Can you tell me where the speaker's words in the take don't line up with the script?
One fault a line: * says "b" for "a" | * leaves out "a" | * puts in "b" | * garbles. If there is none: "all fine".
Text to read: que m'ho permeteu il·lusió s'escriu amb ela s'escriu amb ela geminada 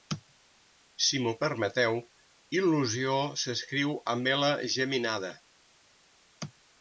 * says "si" for "que"
* leaves out "s'escriu amb ela"